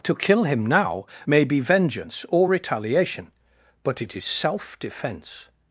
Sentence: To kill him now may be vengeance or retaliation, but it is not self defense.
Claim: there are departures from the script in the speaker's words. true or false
true